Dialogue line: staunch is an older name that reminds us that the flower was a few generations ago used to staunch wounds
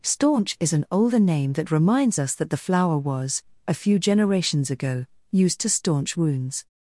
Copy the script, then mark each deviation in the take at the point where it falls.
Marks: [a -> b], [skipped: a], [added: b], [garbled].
staunch is an older name that reminds us that the flower was a few generations ago used to staunch wounds